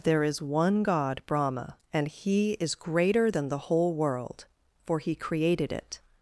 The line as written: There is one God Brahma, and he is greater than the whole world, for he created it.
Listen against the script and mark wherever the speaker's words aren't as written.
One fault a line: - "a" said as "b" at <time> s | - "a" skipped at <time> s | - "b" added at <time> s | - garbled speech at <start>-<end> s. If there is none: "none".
none